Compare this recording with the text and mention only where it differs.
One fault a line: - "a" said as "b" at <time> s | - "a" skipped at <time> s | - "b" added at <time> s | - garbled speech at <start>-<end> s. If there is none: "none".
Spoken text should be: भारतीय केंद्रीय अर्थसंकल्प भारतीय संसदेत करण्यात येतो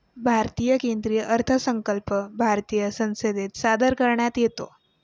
- "सादर" added at 3.6 s